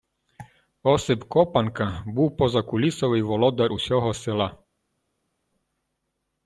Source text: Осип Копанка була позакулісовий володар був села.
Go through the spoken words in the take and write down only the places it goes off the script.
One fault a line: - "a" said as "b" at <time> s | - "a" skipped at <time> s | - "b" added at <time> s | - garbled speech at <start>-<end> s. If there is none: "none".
- "була" said as "був" at 2.0 s
- "був" said as "усього" at 3.7 s